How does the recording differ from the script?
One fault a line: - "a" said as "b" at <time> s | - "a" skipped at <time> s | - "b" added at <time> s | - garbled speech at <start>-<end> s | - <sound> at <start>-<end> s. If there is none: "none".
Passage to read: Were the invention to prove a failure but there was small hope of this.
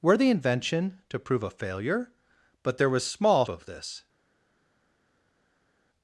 - "hope" skipped at 3.5 s